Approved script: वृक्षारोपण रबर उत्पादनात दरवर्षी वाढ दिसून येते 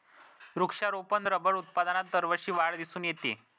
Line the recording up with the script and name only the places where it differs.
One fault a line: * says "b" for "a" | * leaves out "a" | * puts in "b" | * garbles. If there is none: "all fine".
all fine